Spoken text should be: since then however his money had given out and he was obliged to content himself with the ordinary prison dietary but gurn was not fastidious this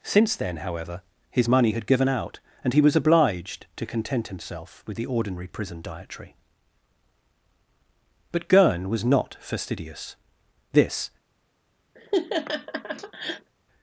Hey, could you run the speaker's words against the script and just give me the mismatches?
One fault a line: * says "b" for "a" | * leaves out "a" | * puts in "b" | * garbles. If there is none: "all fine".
all fine